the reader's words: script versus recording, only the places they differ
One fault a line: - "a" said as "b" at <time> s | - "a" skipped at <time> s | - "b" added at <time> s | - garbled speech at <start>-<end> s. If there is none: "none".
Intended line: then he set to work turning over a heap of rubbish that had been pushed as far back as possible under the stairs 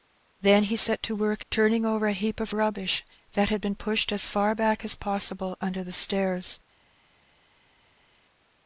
none